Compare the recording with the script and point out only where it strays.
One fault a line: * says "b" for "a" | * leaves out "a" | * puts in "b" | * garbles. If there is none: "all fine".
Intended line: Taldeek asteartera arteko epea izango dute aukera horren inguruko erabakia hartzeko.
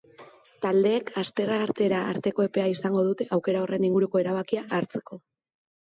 all fine